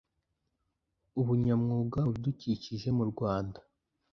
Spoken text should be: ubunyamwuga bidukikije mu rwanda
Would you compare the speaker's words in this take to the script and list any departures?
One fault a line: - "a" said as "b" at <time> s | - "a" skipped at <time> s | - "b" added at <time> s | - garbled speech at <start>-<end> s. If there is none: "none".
none